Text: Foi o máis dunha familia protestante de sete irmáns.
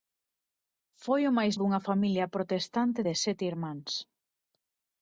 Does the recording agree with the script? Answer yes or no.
yes